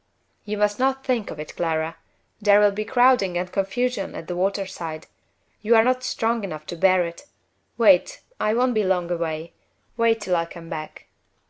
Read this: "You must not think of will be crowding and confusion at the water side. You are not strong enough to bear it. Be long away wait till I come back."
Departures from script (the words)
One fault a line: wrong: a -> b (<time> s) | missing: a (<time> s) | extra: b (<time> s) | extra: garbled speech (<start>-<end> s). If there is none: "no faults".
extra: it Clara There (1.4 s)
extra: Wait I won't (7.8 s)